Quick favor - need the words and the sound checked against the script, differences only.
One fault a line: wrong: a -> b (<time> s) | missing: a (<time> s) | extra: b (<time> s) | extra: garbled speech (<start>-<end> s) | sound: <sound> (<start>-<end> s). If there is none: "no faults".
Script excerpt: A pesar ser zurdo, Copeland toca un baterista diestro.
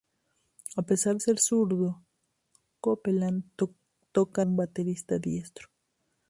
no faults